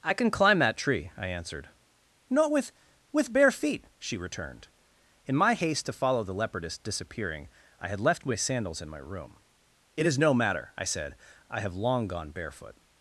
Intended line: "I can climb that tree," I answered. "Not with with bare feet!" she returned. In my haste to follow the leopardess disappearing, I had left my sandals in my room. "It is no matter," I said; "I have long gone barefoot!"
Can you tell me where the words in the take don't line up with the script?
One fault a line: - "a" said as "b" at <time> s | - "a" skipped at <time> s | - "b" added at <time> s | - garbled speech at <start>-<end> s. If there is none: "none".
none